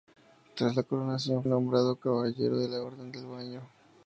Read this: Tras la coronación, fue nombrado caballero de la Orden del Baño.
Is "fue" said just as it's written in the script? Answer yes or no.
no